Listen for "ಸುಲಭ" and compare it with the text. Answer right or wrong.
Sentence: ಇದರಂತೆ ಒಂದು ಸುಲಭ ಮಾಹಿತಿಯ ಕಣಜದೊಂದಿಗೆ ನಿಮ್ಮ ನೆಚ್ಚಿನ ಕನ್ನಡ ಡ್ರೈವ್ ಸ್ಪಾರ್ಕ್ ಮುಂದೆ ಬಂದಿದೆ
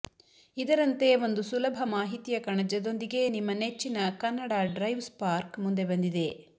right